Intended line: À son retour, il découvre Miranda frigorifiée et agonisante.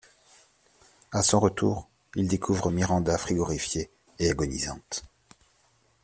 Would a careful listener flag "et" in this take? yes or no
no